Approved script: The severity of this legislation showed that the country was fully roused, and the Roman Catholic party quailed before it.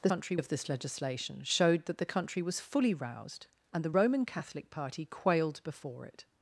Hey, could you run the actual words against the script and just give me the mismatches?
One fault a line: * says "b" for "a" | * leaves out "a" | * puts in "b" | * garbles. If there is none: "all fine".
* says "country" for "severity"